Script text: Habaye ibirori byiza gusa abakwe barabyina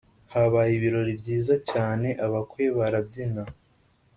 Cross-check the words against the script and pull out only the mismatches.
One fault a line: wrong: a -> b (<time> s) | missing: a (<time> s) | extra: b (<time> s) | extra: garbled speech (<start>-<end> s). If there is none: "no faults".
wrong: gusa -> cyane (1.7 s)